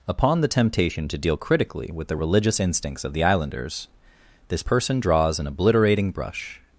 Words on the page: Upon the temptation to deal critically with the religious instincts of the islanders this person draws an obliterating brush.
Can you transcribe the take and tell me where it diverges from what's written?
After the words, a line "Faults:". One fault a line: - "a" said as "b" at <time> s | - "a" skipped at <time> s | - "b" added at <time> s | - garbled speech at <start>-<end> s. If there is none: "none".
Upon the temptation to deal critically with the religious instincts of the islanders this person draws an obliterating brush.
Faults:
none